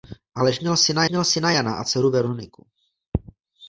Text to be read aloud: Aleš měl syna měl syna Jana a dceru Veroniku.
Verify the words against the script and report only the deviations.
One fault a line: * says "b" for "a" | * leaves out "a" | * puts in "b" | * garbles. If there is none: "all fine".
all fine